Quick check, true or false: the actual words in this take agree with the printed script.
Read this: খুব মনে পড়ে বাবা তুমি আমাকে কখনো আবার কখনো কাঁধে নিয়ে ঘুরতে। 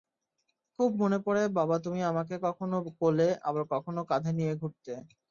false